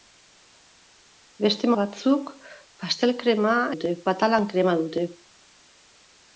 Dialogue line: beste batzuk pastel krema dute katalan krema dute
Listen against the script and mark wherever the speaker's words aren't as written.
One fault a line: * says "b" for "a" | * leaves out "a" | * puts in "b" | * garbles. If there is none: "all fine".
all fine